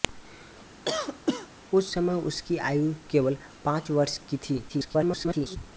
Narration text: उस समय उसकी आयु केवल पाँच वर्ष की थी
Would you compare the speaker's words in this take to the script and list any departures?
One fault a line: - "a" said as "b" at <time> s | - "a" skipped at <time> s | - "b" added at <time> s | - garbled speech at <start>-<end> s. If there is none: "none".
- garbled speech at 4.7-5.6 s